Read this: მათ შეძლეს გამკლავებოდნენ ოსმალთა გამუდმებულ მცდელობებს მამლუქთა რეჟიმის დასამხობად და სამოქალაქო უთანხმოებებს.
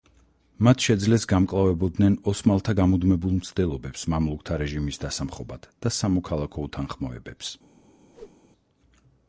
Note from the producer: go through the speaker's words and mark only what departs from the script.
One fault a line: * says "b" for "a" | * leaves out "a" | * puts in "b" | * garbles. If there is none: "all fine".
all fine